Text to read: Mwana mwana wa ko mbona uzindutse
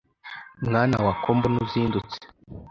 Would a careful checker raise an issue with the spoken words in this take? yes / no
yes